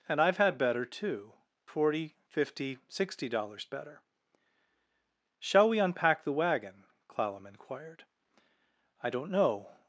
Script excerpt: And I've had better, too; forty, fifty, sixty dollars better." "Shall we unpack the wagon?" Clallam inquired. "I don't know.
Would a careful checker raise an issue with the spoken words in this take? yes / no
no